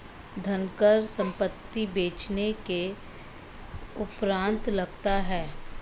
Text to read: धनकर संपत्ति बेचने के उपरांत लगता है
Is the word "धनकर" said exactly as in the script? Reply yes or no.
yes